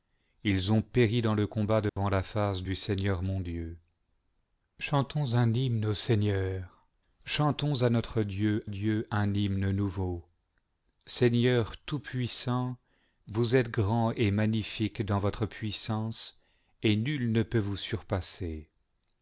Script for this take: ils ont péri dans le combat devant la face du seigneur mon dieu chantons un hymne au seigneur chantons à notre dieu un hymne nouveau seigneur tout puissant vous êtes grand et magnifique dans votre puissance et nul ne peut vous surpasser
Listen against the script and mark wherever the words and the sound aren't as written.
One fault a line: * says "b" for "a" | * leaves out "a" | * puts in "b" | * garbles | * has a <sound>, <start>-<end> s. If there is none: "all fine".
* has a dropout, 1.9-2.0 s
* puts in "dieu"